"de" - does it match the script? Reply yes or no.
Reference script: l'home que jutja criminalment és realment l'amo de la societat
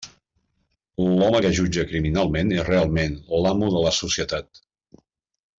yes